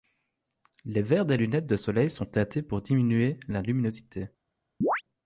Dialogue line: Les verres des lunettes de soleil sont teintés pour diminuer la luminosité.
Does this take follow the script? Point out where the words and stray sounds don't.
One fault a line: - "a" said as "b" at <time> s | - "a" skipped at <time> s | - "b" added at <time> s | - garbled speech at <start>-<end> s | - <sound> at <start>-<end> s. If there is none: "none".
- chirp at 4.8-5.0 s